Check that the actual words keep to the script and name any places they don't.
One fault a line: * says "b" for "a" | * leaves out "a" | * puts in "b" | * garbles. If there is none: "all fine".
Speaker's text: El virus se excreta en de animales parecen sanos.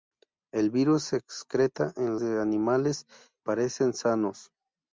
all fine